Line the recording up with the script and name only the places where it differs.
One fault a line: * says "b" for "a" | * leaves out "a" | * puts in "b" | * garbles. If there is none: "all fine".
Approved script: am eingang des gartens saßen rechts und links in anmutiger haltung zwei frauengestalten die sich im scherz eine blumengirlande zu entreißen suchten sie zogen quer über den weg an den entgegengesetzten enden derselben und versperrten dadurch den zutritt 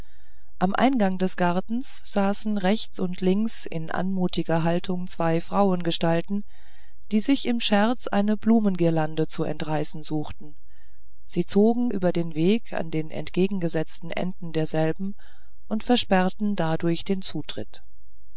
* leaves out "quer"